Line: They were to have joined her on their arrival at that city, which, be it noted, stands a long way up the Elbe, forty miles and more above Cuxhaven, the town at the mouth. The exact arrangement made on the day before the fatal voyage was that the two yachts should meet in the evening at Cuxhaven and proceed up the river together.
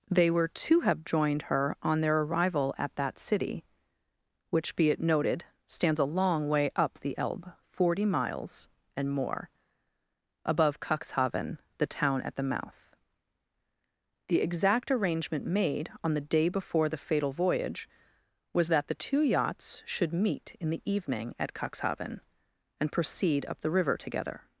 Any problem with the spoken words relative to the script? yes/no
no